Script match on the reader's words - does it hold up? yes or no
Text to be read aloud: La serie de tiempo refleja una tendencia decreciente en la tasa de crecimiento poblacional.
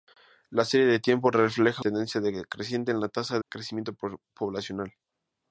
no